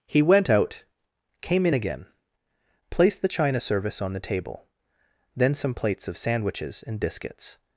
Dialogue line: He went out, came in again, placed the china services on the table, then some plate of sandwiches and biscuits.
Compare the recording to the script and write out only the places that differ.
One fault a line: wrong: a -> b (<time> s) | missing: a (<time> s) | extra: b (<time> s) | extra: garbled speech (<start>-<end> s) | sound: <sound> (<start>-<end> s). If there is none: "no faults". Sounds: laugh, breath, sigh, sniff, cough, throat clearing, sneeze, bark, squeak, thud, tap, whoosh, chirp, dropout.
wrong: services -> service (3.6 s)
wrong: plate -> plates (5.7 s)